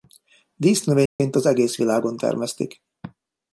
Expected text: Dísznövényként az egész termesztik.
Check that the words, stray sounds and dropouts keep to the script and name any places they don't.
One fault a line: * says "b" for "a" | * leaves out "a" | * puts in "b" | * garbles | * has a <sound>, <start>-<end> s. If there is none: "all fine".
* has a dropout, 1.1-1.2 s
* puts in "világon"